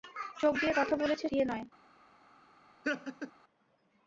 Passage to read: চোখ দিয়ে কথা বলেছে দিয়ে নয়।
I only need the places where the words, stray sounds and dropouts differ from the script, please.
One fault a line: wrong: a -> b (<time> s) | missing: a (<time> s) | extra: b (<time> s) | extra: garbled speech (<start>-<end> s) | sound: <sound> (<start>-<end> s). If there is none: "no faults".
sound: laugh (2.8-3.3 s)